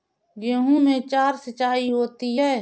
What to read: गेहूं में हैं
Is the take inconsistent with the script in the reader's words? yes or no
yes